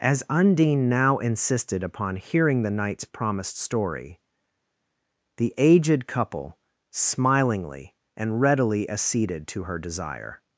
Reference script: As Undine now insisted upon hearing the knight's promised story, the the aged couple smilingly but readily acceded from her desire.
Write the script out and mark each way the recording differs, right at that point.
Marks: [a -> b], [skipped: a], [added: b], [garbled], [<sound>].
As Undine now insisted upon hearing the knight's promised story, the [skipped: the] aged couple smilingly [but -> and] readily acceded [from -> to] her desire.